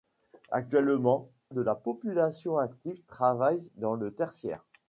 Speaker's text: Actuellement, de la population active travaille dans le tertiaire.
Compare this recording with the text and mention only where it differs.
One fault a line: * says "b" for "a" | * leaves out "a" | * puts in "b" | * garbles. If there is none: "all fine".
all fine